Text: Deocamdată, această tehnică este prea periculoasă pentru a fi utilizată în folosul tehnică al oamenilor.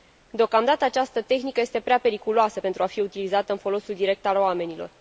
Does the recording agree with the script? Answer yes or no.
no